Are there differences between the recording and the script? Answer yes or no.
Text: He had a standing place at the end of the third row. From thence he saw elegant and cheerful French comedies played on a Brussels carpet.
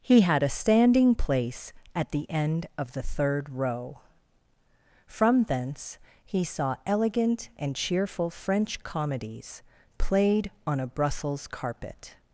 no